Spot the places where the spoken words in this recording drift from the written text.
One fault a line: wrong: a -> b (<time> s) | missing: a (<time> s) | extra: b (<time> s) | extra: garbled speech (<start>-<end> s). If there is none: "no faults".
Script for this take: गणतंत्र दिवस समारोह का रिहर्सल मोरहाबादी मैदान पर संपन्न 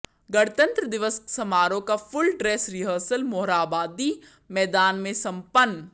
extra: फुल ड्रेस (2.0 s)
wrong: पर -> में (5.0 s)